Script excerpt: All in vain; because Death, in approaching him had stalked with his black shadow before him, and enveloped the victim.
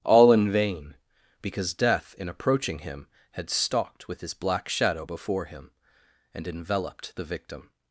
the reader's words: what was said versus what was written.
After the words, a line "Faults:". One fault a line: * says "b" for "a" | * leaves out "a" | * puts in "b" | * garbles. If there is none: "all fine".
All in vain; because Death, in approaching him had stalked with his black shadow before him, and enveloped the victim.
Faults:
all fine